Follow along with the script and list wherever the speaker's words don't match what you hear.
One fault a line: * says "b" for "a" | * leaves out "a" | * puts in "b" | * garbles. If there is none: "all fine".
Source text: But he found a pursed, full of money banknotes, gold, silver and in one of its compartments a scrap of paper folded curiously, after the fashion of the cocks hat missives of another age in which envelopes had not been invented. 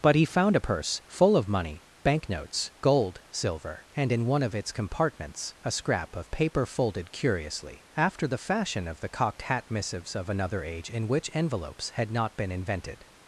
* says "purse" for "pursed"
* says "cocked" for "cocks"